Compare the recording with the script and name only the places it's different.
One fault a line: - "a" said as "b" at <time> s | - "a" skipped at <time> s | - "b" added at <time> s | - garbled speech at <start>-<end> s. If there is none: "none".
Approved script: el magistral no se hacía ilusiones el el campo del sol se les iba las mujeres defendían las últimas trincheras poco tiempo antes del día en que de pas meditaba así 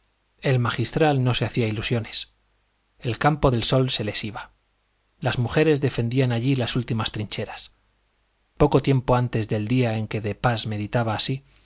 - "el" skipped at 3.2 s
- "allí" added at 6.3 s